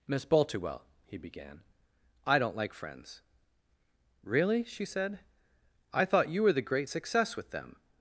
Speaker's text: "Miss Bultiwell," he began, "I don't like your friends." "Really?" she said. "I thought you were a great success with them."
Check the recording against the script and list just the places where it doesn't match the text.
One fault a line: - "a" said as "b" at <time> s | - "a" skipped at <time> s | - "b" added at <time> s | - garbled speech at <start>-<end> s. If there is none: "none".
- "your" skipped at 2.7 s
- "a" said as "the" at 6.5 s